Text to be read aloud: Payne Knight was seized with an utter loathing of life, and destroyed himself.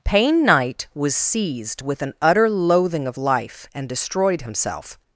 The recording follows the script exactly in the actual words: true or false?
true